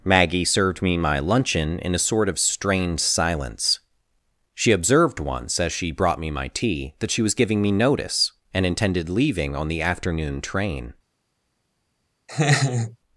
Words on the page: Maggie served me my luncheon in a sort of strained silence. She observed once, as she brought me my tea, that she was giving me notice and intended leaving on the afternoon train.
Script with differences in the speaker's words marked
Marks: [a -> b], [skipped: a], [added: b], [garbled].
Maggie served me my luncheon in a sort of strained silence. She observed once, as she brought me my tea, that she was giving me notice and intended leaving on the afternoon train.